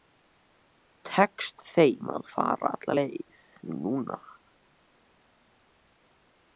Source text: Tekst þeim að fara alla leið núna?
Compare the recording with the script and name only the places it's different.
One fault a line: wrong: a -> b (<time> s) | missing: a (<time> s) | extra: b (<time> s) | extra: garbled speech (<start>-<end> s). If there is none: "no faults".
no faults